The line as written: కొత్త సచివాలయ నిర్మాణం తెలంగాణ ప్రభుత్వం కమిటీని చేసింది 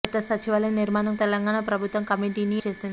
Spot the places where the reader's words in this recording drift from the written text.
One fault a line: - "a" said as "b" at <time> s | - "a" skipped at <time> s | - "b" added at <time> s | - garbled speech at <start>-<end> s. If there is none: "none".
none